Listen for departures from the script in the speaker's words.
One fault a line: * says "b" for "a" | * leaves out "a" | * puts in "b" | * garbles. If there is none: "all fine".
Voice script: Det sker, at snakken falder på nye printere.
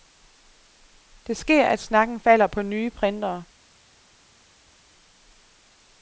all fine